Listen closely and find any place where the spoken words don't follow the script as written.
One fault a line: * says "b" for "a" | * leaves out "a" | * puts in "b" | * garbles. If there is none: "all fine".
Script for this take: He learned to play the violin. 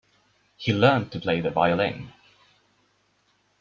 all fine